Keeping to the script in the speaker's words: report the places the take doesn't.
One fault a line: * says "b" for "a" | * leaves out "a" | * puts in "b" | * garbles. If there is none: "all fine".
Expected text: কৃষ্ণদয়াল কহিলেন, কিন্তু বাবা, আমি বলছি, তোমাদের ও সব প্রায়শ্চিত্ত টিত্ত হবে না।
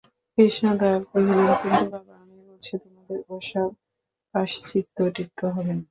all fine